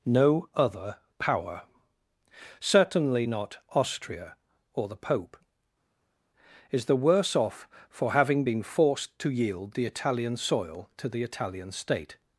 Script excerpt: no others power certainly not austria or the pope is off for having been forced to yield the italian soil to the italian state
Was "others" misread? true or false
true